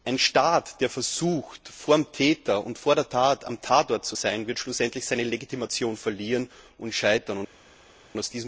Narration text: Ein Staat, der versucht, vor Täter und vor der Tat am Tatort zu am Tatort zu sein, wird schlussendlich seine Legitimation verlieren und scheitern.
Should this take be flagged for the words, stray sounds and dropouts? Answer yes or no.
yes